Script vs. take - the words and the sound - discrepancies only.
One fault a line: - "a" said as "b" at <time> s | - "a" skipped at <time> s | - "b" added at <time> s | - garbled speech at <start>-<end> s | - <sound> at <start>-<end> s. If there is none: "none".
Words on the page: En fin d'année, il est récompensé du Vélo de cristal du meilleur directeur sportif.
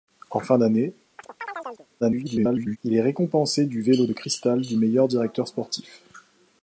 - chirp at 1.2-1.9 s
- garbled speech at 2.0-2.8 s